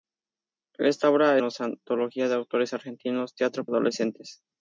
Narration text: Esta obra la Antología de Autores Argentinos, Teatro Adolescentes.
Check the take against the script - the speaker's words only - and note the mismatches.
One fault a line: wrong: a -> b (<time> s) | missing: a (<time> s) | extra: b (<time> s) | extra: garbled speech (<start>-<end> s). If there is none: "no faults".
no faults